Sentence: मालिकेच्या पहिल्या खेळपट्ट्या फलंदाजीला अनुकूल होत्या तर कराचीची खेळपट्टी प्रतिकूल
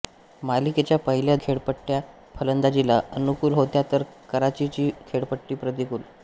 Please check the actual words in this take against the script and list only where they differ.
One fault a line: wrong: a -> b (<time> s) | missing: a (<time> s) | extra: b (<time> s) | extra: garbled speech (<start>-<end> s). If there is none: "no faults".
no faults